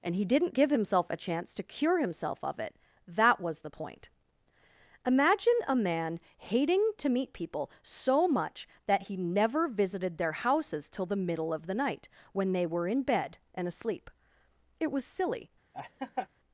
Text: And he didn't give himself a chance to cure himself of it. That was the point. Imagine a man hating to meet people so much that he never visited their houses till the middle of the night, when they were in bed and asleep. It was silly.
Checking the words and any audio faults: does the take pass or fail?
fail